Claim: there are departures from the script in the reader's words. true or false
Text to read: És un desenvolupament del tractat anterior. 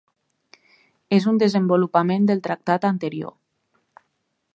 false